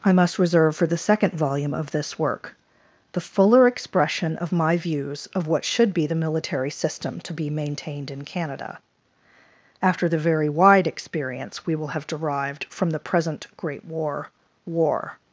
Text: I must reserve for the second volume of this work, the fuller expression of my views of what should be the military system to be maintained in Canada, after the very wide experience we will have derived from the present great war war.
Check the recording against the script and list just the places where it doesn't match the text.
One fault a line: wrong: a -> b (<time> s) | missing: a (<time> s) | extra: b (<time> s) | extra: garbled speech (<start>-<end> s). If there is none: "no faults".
no faults